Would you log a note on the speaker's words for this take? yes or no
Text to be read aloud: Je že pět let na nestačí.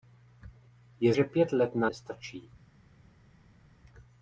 no